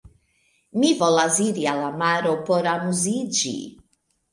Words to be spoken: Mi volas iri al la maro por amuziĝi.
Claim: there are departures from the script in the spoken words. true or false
false